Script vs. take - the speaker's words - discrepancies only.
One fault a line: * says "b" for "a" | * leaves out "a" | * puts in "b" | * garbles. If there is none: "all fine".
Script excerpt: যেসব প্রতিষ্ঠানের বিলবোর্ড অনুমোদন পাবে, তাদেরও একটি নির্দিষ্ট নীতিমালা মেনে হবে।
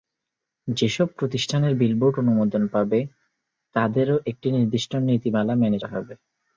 all fine